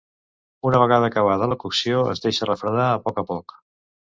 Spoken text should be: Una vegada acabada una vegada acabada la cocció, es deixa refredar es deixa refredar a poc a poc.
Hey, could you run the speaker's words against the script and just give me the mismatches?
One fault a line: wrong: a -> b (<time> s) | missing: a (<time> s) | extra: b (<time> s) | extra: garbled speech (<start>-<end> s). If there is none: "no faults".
missing: una vegada acabada (1.5 s)
missing: es deixa refredar (2.9 s)